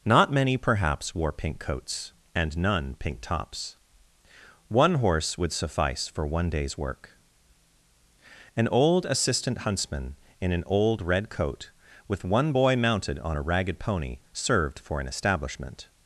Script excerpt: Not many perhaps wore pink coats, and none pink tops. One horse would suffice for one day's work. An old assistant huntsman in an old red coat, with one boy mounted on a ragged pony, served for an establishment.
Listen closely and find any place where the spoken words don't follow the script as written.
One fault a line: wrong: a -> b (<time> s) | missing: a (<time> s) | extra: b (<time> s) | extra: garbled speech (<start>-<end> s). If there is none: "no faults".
no faults